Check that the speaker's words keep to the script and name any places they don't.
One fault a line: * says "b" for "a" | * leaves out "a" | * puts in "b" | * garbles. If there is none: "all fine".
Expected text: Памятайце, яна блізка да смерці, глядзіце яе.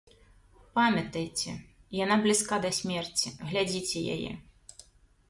all fine